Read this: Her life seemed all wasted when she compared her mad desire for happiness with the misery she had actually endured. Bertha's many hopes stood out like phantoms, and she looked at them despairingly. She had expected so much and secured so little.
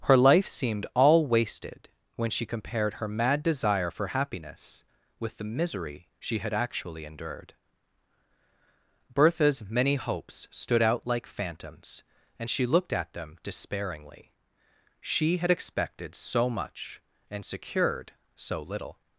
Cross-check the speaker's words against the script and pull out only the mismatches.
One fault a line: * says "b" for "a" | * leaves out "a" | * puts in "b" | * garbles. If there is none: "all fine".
all fine